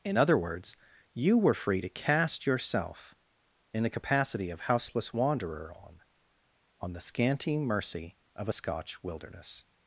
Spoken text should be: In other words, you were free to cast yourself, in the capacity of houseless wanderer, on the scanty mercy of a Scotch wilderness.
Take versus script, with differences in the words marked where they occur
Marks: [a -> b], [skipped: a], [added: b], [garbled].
In other words, you were free to cast yourself, in the capacity of houseless wanderer, on [added: on] the scanty mercy of a Scotch wilderness.